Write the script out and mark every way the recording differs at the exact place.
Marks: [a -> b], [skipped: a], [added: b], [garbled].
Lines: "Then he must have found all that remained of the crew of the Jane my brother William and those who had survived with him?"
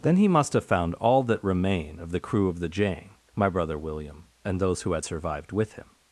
"Then he must have found all that [remained -> remain] of the crew of the Jane my brother William and those who had survived with him?"